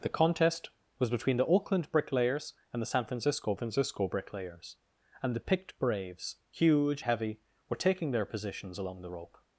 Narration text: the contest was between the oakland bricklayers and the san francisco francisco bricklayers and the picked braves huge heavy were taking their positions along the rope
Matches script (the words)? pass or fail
pass